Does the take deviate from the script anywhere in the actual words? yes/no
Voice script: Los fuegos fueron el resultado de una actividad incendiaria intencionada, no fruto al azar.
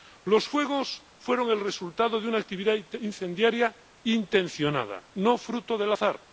yes